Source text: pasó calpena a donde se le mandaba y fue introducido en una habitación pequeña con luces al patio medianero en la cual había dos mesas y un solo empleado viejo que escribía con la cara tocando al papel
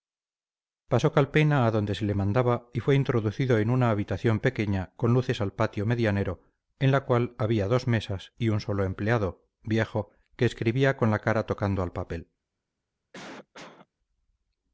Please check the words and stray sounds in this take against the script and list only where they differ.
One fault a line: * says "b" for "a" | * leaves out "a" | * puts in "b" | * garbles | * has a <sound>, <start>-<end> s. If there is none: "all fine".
* has a cough, 13.1-13.9 s